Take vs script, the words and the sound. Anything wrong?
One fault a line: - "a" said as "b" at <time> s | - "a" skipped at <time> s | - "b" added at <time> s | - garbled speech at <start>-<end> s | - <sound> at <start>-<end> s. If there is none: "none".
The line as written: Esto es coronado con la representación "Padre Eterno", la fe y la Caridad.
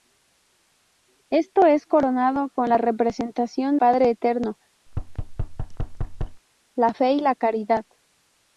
- thud at 4.9-6.4 s